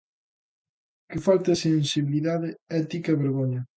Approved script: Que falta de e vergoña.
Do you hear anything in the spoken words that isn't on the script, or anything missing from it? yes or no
yes